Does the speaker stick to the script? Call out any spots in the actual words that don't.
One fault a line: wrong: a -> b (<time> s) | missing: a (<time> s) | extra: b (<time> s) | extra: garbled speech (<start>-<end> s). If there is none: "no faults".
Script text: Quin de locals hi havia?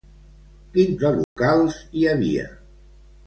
no faults